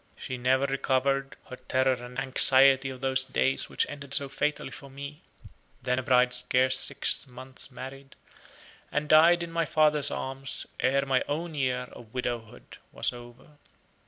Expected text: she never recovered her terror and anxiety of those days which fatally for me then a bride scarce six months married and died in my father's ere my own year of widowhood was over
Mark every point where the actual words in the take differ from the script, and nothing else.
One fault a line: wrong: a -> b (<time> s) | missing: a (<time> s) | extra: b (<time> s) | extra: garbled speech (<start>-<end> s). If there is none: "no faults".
extra: ended so (3.8 s)
extra: arms (10.1 s)